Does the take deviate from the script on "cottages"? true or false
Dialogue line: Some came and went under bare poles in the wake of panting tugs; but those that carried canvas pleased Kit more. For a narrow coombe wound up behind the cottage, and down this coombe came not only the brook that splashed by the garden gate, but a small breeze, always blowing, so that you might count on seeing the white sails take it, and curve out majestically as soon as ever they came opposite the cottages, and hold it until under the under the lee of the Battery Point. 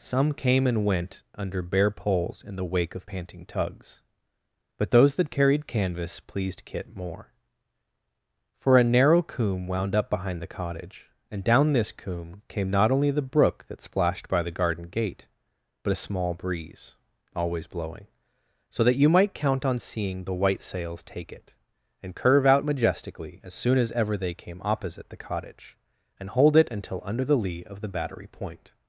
true